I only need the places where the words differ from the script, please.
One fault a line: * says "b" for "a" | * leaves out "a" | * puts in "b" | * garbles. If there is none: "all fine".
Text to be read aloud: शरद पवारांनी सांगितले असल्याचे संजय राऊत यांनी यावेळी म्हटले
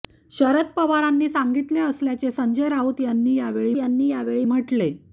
* puts in "यांनी यावेळी"